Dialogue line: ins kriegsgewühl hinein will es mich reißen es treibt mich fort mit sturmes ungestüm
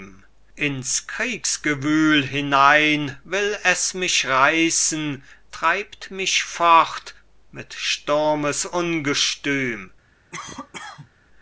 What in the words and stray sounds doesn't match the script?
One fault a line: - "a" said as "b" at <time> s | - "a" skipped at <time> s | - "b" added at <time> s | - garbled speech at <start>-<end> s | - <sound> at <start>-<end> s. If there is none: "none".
- "es" skipped at 5.2 s
- cough at 10.3-11.1 s